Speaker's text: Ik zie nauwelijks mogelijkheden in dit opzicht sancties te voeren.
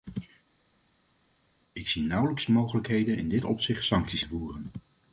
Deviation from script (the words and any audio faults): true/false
false